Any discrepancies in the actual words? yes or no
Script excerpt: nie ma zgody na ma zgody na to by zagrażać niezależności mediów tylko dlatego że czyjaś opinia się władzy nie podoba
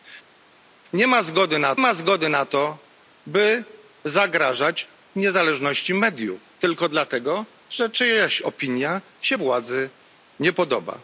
no